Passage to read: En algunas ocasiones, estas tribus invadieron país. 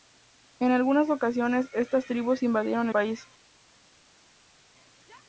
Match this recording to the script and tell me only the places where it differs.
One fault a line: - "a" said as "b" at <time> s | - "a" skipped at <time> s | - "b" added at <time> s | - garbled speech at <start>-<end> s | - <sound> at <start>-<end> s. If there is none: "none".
none